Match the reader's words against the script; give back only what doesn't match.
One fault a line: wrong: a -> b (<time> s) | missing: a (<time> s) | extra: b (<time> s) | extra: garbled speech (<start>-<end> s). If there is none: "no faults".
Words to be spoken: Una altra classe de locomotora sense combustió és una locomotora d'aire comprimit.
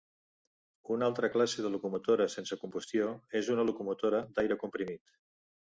no faults